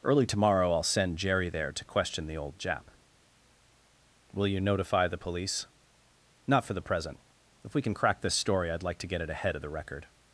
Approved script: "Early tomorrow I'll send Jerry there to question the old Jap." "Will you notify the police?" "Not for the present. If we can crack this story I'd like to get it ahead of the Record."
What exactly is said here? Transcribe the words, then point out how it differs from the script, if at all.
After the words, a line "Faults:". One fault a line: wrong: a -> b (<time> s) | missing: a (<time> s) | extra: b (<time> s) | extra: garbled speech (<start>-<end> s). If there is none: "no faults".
"Early tomorrow I'll send Jerry there to question the old Jap." "Will you notify the police?" "Not for the present. If we can crack this story I'd like to get it ahead of the Record."
Faults:
no faults